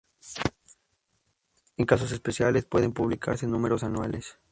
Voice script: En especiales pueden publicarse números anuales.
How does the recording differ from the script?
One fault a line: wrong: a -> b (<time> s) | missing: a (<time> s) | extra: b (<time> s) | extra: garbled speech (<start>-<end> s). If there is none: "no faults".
extra: casos (1.9 s)